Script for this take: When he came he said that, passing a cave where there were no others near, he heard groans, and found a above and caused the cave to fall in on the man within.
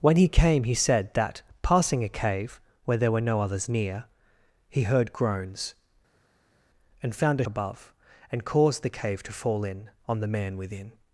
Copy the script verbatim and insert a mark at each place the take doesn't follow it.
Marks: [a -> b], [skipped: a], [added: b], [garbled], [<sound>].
When he came he said that, passing a cave where there were no others near, he heard groans, and found a above and caused the cave to fall in on the man within.